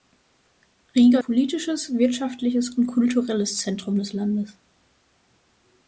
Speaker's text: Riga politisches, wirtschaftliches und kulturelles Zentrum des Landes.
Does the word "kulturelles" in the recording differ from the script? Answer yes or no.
no